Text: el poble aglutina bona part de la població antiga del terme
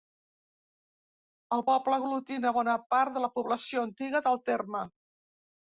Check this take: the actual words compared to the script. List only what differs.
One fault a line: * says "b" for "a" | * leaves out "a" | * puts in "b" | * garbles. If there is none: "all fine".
all fine